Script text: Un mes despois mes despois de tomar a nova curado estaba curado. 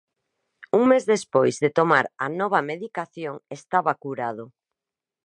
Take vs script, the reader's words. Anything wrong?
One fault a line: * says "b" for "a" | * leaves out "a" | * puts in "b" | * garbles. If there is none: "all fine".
* leaves out "mes despois"
* says "medicación" for "curado"